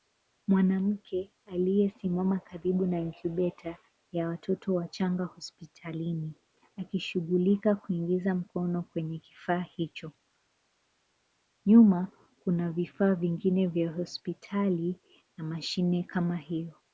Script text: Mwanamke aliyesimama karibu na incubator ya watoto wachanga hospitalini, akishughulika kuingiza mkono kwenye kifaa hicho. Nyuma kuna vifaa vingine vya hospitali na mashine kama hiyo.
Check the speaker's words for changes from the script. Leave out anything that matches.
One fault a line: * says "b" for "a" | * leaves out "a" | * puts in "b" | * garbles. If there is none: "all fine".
all fine